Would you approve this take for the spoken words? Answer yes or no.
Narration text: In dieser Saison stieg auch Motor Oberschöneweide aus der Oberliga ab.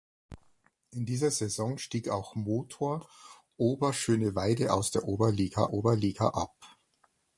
no